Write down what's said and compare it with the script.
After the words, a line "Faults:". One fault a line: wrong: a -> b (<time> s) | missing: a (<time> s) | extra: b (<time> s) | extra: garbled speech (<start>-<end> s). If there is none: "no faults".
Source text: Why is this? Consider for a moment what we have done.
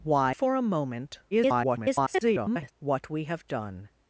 Why for a moment [garbled] what we have done.
Faults:
missing: is this Consider (0.3 s)
extra: garbled speech (1.3-2.7 s)